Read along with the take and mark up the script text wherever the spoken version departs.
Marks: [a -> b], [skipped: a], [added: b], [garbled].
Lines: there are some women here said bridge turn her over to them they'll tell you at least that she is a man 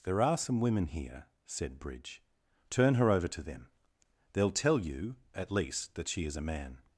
there are some women here said bridge turn her over to them they'll tell you at least that she is a man